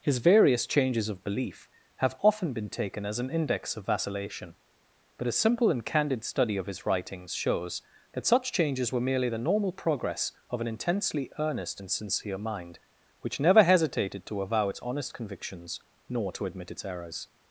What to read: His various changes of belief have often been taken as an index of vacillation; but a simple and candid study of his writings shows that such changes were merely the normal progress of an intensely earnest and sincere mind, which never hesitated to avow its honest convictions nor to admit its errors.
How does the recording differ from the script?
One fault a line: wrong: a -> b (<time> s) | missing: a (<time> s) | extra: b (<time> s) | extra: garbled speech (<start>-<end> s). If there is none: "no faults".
no faults